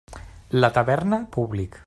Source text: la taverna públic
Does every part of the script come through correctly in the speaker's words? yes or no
yes